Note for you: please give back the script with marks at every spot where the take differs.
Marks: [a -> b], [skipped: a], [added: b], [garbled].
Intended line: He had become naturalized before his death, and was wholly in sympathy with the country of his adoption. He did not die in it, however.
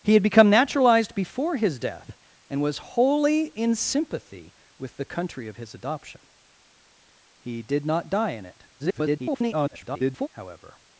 He had become naturalized before his death, and was wholly in sympathy with the country of his adoption. He did not die in it, [garbled] however.